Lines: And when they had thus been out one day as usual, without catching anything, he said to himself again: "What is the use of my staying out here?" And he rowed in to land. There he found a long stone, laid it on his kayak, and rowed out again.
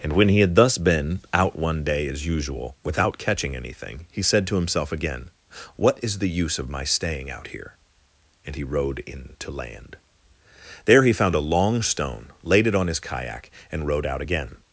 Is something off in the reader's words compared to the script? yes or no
yes